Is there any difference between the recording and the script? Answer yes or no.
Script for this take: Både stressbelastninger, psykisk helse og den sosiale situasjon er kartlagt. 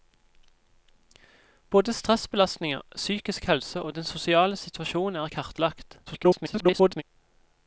yes